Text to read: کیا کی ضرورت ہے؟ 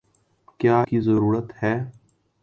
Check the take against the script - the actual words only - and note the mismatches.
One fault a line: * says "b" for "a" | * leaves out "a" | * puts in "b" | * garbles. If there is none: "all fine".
all fine